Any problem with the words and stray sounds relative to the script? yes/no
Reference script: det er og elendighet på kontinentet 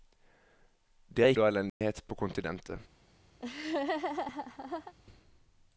yes